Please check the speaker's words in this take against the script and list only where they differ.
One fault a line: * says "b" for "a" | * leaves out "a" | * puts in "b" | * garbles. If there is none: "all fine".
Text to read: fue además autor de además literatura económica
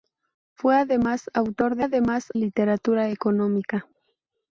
all fine